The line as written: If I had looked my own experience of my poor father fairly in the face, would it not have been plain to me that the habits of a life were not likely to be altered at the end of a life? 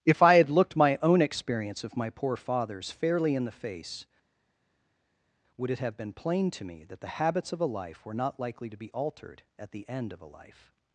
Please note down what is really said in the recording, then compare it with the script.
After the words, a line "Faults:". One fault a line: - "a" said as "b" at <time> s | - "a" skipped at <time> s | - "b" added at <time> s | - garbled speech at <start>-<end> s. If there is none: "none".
If I had looked my own experience of my poor fathers fairly in the face, would it have been plain to me that the habits of a life were not likely to be altered at the end of a life?
Faults:
- "father" said as "fathers" at 2.4 s
- "not" skipped at 5.8 s